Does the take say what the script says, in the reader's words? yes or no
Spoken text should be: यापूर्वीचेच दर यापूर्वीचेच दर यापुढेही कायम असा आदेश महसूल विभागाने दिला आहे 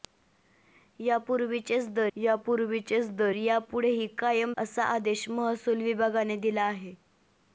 yes